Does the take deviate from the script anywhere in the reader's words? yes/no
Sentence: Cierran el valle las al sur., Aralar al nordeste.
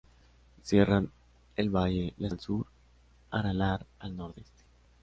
no